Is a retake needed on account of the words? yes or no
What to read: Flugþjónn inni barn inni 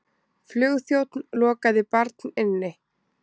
yes